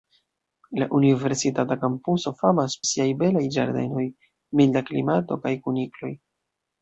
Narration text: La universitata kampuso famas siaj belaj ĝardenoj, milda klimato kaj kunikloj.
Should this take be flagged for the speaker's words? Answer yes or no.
no